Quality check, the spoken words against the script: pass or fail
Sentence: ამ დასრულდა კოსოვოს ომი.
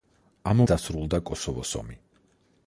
pass